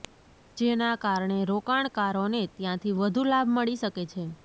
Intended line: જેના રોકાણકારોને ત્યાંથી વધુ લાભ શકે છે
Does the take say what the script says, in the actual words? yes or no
no